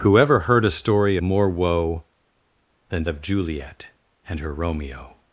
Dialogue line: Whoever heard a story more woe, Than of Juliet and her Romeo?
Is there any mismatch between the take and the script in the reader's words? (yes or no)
no